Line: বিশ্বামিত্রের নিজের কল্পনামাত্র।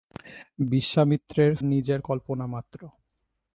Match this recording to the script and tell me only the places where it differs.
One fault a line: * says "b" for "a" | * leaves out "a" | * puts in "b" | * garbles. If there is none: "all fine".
all fine